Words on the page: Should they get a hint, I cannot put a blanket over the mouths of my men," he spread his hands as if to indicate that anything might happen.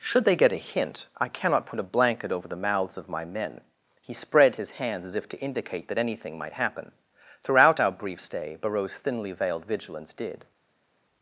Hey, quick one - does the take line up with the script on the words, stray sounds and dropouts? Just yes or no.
no